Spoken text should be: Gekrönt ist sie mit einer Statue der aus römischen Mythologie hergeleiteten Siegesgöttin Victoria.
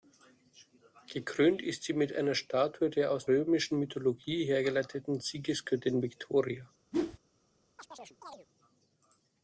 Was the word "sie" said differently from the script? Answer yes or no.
no